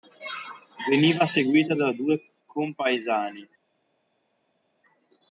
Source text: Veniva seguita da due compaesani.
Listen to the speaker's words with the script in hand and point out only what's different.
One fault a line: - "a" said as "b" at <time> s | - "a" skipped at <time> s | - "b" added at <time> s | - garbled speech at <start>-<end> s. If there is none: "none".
none